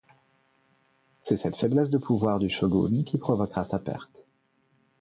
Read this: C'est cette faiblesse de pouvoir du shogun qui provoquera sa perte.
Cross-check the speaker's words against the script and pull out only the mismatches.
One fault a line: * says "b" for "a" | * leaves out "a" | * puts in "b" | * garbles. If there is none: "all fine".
all fine